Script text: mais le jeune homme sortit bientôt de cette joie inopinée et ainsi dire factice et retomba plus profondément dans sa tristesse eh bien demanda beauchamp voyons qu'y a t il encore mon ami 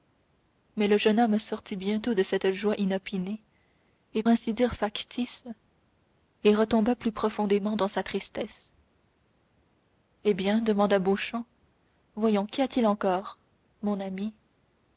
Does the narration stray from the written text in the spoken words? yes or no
no